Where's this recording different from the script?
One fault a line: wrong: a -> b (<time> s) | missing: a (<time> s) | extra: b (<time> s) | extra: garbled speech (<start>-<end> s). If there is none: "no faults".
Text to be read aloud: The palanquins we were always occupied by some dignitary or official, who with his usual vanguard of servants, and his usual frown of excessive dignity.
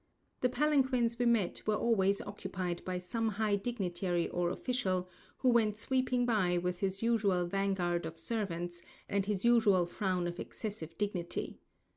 extra: met (1.3 s)
extra: high (3.3 s)
extra: went sweeping by (5.5 s)